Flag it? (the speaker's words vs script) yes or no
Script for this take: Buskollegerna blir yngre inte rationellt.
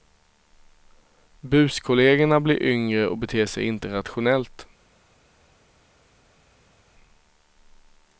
yes